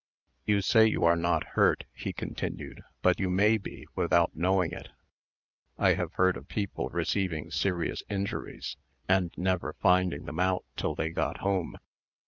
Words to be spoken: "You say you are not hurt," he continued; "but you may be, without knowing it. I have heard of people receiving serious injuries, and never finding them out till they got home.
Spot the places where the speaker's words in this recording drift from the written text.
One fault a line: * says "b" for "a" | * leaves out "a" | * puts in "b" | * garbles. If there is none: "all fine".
all fine